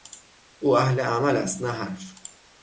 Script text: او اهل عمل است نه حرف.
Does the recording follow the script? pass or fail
pass